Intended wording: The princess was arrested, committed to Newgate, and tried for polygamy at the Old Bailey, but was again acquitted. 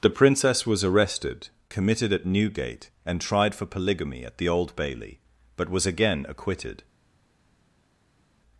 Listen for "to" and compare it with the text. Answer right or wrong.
wrong